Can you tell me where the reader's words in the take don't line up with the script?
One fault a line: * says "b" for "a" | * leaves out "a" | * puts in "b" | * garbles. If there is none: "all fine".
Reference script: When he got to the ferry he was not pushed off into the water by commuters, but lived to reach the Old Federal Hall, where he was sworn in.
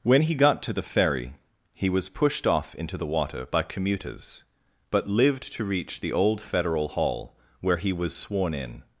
* leaves out "not"